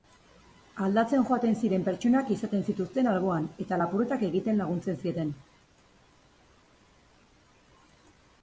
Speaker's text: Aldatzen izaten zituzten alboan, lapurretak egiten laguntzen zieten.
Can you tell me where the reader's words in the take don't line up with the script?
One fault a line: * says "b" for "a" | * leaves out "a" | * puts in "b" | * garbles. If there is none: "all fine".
* puts in "joaten ziren pertsonak"
* puts in "eta"